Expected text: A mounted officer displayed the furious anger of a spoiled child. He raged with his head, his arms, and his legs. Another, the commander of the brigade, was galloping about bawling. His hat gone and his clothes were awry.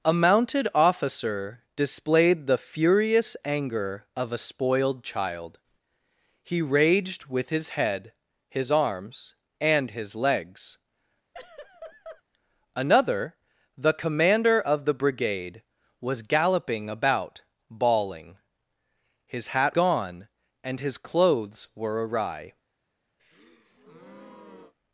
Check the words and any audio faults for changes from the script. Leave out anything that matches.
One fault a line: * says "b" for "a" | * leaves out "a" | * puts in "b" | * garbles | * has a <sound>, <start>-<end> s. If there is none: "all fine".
* has a laugh, 11.3-12.2 s
* has a breath, 23.2-24.7 s